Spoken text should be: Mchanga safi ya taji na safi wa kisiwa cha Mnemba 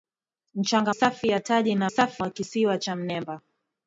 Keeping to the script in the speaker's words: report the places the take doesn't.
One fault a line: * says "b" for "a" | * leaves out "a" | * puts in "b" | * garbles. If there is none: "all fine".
all fine